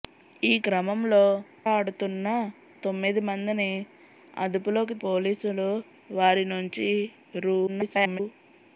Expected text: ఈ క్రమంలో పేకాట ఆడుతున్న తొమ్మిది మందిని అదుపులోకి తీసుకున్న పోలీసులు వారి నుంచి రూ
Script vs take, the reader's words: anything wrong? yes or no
yes